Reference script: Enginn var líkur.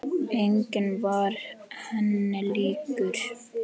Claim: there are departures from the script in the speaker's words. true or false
true